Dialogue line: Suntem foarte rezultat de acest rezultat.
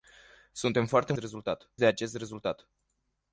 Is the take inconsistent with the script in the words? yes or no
no